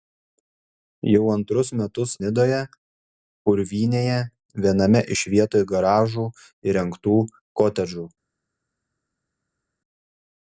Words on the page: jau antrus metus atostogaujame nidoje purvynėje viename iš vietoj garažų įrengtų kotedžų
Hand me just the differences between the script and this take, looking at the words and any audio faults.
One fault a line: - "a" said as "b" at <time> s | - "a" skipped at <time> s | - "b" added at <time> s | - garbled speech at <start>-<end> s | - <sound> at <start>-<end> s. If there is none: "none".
- "atostogaujame" skipped at 2.1 s